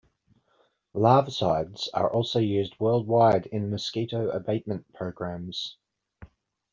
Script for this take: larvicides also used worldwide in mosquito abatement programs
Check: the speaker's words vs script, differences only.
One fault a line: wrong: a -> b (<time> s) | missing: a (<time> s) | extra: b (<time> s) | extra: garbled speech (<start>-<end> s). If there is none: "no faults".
extra: are (1.9 s)